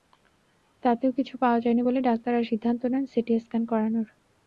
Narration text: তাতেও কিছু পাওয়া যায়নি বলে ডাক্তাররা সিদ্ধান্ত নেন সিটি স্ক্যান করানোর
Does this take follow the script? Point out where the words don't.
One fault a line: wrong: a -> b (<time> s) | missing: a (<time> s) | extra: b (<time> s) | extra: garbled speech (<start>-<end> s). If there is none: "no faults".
no faults